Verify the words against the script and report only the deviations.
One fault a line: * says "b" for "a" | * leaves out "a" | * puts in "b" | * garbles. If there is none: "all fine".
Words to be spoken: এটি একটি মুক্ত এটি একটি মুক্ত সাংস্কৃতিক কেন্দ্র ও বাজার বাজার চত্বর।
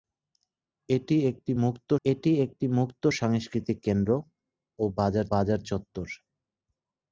all fine